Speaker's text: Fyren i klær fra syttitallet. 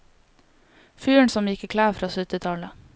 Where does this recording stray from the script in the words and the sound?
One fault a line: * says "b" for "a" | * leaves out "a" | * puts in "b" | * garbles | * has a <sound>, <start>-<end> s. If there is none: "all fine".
* puts in "som gikk"